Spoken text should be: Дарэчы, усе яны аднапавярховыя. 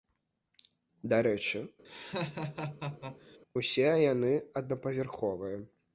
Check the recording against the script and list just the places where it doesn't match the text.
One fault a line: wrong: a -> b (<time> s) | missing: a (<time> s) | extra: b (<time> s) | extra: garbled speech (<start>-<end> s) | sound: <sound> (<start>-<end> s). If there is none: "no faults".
sound: laugh (1.8-3.4 s)